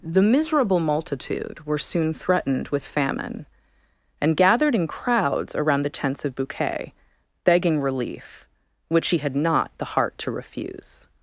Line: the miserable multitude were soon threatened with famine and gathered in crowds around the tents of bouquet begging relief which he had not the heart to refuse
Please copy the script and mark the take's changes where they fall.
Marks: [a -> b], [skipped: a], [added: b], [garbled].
the miserable multitude were soon threatened with famine and gathered in crowds around the tents of bouquet begging relief which he had not the heart to refuse